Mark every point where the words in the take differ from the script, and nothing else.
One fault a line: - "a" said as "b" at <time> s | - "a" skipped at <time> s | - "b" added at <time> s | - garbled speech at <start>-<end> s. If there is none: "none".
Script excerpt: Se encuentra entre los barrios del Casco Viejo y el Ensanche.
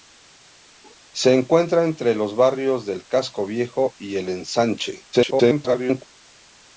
- garbled speech at 5.1-6.0 s